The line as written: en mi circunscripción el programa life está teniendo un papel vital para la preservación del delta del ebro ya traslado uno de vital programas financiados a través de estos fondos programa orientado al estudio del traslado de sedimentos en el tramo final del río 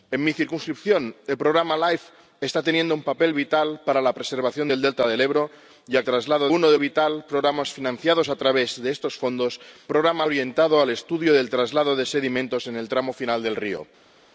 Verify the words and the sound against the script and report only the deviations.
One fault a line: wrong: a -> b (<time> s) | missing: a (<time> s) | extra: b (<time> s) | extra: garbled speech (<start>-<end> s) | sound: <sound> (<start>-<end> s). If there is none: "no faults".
no faults